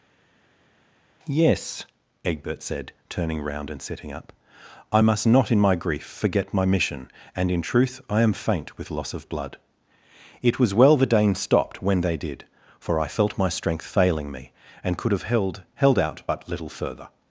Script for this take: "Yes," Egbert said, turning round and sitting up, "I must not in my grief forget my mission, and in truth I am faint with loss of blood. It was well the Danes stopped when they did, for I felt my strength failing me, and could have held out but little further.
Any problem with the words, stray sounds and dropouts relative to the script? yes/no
yes